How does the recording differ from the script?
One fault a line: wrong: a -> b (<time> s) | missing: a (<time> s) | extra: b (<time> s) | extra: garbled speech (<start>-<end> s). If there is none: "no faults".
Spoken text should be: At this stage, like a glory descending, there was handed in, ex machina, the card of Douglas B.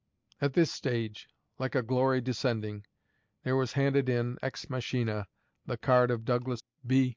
no faults